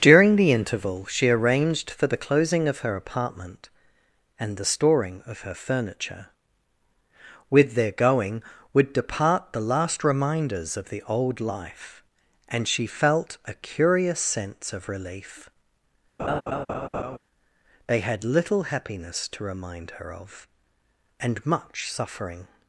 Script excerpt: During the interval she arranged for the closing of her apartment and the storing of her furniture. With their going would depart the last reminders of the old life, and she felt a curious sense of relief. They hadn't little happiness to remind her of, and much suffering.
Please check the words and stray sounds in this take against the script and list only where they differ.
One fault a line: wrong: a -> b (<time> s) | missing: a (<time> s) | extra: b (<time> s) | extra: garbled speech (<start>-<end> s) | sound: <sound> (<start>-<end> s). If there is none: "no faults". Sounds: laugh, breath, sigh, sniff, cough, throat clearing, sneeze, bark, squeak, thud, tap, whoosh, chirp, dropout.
sound: laugh (16.2-17.2 s)
wrong: hadn't -> had (18.0 s)